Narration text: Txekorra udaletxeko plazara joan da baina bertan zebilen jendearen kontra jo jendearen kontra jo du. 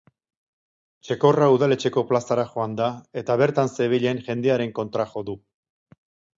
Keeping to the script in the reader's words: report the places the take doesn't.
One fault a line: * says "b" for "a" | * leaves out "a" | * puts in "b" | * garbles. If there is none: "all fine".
* says "eta" for "baina"
* leaves out "jendearen kontra jo"